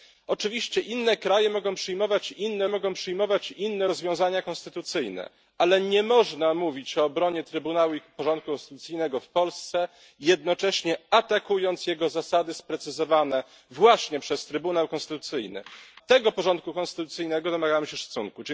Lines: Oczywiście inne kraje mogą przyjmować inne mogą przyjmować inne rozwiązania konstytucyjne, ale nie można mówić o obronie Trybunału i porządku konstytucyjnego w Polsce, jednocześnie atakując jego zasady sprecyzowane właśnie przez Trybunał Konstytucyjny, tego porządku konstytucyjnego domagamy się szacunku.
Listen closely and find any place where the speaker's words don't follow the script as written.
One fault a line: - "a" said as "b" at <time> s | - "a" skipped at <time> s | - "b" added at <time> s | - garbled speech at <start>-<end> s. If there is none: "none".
none